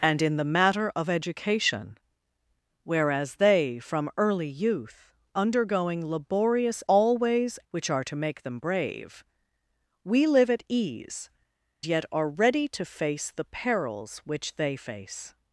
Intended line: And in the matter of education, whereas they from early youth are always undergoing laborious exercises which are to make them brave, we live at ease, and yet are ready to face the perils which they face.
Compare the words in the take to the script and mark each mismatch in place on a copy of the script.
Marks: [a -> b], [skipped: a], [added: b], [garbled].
And in the matter of education, whereas they from early youth [skipped: are always] undergoing laborious [exercises -> always] which are to make them brave, we live at ease, [skipped: and] yet are ready to face the perils which they face.